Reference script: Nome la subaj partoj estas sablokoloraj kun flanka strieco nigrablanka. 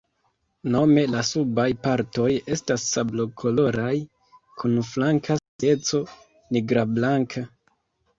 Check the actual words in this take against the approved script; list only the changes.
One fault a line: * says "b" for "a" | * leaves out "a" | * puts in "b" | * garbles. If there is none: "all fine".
all fine